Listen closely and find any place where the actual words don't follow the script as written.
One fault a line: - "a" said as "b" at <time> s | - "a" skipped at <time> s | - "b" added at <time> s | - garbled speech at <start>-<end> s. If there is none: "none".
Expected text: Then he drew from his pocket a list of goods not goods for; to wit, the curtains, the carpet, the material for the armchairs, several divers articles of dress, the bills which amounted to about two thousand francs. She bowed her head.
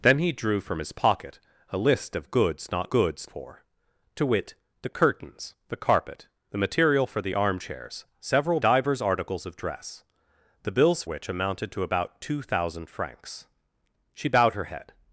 none